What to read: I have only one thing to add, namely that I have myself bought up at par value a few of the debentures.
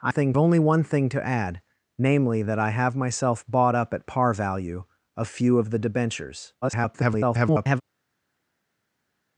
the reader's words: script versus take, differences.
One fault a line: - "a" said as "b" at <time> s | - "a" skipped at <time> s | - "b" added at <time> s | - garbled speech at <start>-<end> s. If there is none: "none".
- "have" said as "thing" at 0.1 s
- garbled speech at 6.6-7.8 s